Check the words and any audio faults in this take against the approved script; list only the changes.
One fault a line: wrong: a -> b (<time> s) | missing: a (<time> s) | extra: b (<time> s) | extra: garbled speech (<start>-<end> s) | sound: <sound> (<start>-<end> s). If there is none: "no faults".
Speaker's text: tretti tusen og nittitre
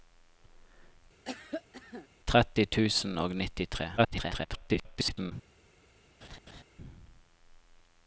sound: cough (1.2-2.1 s)
extra: garbled speech (4.0-5.3 s)
sound: laugh (6.2-6.6 s)